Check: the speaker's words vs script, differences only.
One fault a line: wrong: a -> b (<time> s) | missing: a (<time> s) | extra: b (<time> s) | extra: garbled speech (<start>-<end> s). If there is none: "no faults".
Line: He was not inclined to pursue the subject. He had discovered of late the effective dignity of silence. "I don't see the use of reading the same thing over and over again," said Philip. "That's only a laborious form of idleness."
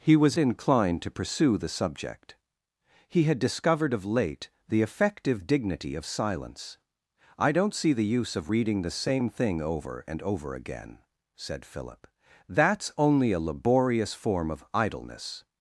missing: not (0.4 s)